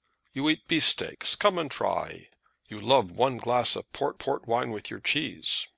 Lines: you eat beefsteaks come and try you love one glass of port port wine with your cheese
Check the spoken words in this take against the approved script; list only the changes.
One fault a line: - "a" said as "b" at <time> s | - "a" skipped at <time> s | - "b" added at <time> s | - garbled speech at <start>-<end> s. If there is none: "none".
none